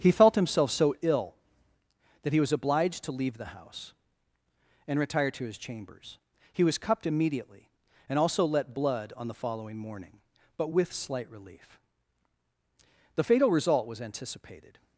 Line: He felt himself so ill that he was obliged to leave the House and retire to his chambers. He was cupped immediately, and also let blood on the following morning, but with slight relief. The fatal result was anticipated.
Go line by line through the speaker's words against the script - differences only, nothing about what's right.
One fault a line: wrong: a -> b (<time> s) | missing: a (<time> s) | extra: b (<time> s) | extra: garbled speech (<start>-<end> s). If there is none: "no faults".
no faults